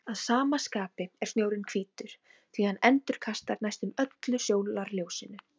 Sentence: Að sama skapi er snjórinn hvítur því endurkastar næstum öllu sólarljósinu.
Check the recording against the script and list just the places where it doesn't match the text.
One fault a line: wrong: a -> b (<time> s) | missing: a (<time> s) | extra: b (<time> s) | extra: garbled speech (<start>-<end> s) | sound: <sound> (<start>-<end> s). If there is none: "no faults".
extra: hann (2.7 s)